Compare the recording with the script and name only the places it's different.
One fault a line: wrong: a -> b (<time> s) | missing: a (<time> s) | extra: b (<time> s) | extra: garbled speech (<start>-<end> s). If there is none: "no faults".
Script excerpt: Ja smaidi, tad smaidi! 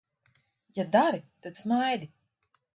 wrong: smaidi -> dari (0.9 s)